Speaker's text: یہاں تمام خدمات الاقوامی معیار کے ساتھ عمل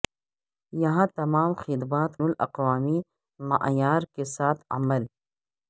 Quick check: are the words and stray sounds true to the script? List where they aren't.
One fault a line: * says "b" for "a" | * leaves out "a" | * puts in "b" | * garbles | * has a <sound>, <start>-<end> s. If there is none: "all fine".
all fine